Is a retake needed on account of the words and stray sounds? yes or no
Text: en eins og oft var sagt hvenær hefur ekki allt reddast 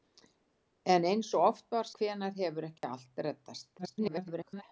yes